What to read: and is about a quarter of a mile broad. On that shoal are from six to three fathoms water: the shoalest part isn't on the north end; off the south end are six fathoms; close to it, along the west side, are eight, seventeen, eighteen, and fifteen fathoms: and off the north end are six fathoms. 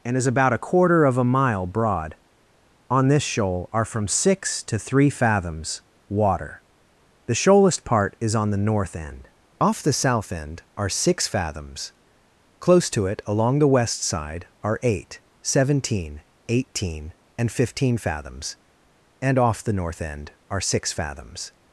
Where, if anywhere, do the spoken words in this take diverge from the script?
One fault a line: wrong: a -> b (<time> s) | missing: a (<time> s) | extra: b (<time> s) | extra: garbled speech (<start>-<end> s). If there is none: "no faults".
wrong: that -> this (3.1 s)
wrong: isn't -> is (8.2 s)